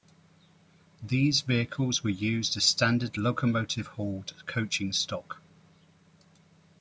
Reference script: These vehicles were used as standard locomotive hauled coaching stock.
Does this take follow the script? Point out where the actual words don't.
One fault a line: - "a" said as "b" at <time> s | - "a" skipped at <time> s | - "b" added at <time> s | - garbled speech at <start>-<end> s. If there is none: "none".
none